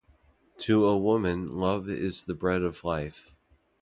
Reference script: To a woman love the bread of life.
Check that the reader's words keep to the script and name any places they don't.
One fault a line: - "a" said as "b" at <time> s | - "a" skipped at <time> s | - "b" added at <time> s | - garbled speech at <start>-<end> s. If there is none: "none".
- "is" added at 1.9 s